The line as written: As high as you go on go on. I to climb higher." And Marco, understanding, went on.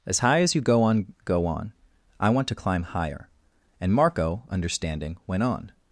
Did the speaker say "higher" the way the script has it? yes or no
yes